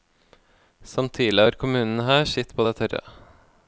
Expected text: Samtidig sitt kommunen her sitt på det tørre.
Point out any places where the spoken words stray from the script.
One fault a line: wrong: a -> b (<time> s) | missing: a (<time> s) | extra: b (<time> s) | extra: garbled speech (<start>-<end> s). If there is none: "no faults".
wrong: sitt -> har (1.4 s)